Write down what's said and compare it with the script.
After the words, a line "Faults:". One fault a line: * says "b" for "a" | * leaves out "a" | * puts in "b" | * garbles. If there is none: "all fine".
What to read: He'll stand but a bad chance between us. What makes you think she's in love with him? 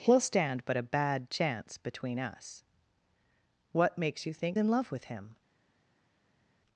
He'll stand but a bad chance between us. What makes you think in love with him?
Faults:
* leaves out "she's"